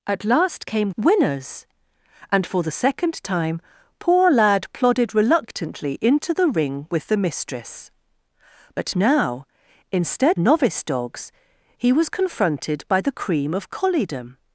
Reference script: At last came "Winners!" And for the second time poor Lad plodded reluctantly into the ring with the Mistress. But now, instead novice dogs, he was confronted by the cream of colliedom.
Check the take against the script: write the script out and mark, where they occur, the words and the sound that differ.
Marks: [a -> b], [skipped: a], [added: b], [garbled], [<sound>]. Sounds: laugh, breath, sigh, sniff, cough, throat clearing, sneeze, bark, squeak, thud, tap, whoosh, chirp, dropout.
At last came "Winners!" And for the second time poor Lad plodded reluctantly into the ring with the Mistress. But now, instead novice dogs, he was confronted by the cream of colliedom.